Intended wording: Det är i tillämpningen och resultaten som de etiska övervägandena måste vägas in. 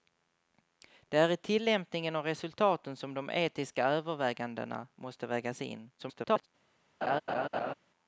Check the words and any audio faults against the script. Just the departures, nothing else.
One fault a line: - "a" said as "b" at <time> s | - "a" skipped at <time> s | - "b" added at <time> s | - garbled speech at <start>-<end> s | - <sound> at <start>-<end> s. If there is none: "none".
- garbled speech at 6.0-6.5 s
- laugh at 7.0-7.7 s